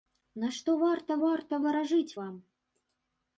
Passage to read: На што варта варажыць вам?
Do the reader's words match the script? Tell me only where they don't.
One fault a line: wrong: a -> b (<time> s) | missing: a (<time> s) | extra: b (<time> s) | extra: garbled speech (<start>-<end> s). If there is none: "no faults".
extra: варта (1.3 s)